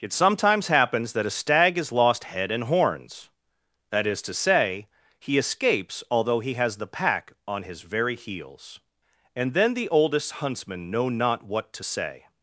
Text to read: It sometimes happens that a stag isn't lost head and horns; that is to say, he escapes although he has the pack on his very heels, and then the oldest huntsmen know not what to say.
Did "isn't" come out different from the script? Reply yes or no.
yes